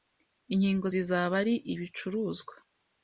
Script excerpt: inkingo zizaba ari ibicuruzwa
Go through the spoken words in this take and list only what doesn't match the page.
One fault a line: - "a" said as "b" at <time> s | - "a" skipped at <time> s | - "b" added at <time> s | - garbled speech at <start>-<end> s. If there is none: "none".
none